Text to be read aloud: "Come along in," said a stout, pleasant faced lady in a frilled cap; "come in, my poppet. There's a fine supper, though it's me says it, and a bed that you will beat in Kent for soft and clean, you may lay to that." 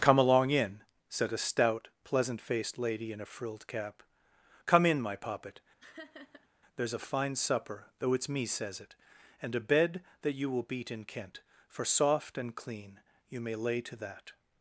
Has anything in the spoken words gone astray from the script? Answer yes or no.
no